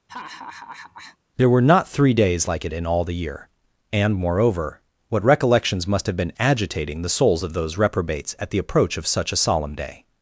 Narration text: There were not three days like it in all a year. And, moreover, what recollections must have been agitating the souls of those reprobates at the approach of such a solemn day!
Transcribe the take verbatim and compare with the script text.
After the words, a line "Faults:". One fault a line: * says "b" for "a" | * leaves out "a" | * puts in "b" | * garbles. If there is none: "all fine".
There were not three days like it in all the year. And, moreover, what recollections must have been agitating the souls of those reprobates at the approach of such a solemn day!
Faults:
* says "the" for "a"